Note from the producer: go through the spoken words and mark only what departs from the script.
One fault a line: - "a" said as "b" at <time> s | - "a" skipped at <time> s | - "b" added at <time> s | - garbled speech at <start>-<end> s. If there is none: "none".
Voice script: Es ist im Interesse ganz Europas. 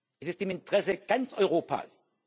none